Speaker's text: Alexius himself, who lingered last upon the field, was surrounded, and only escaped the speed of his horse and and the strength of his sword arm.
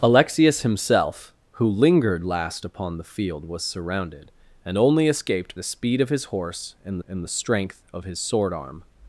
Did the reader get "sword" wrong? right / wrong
right